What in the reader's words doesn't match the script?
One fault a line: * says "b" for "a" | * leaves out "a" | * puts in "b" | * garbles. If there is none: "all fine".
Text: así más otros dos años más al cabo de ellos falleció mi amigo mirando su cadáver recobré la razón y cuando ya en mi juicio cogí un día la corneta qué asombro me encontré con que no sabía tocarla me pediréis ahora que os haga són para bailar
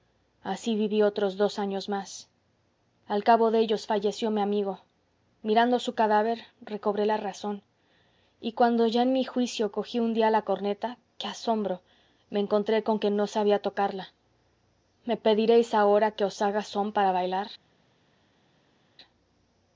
* says "viví" for "más"